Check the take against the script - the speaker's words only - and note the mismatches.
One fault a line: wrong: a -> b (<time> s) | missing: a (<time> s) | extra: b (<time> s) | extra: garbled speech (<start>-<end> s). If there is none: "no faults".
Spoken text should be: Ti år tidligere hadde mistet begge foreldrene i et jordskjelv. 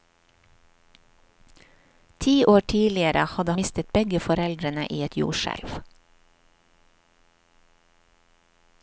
no faults